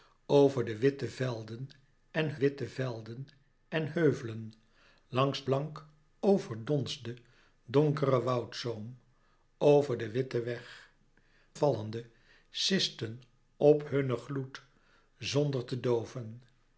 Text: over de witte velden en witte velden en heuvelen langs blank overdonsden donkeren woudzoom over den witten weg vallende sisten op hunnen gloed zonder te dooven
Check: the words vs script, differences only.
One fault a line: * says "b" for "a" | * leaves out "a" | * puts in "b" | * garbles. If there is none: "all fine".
all fine